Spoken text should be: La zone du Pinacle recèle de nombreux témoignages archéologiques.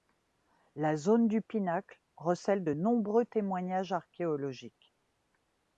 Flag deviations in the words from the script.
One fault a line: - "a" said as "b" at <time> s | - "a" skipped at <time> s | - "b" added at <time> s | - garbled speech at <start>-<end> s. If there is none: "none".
none